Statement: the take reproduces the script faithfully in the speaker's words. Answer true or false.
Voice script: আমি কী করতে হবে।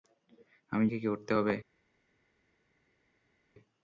true